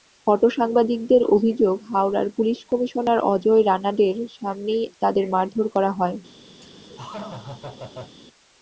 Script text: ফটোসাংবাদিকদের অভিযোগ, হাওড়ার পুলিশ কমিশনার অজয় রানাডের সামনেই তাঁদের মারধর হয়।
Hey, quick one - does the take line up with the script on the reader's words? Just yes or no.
no